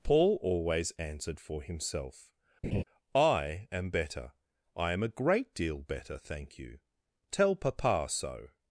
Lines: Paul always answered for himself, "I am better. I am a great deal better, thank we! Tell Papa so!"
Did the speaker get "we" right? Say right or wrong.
wrong